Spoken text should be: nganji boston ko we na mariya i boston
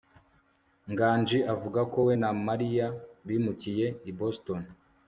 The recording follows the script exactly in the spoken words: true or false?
false